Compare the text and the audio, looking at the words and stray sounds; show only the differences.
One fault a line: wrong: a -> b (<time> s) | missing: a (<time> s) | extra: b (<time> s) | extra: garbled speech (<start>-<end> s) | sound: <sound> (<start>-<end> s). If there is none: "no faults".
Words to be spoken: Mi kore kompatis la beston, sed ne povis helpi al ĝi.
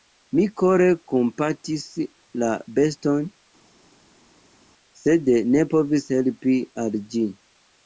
no faults